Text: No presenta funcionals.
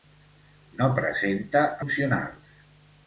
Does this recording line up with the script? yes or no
yes